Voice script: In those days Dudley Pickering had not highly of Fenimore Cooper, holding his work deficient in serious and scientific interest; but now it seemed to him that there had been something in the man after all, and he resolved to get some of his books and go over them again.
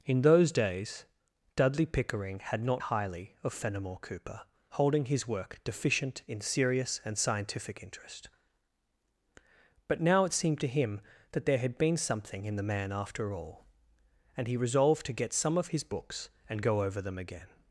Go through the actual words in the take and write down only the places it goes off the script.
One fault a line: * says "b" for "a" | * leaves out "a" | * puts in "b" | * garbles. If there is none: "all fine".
all fine